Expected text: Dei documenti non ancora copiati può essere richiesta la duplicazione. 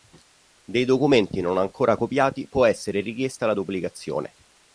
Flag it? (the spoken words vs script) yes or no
no